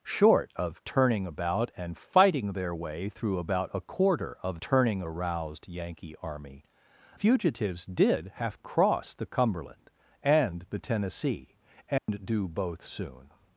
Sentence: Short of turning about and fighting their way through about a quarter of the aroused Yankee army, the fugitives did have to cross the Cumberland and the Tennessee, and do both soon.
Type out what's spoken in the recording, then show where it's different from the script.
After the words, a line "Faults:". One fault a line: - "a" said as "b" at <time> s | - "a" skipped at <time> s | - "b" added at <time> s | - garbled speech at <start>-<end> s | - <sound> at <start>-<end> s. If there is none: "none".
Short of turning about and fighting their way through about a quarter of turning aroused Yankee army, fugitives did have cross the Cumberland and the Tennessee, and do both soon.
Faults:
- "the" said as "turning" at 4.6 s
- "the" skipped at 6.6 s
- "to" skipped at 8.6 s
- dropout at 12.0-12.1 s